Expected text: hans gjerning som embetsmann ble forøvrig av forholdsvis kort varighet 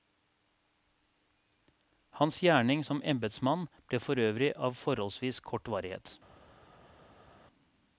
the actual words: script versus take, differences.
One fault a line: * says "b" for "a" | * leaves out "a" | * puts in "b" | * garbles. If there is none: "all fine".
all fine